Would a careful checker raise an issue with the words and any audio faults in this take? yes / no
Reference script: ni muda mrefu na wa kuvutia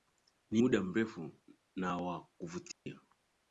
yes